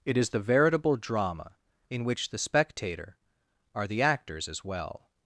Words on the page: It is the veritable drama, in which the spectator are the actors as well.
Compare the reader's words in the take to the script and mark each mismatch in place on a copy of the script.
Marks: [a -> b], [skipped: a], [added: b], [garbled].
It is the veritable drama, in which the spectator are the actors as well.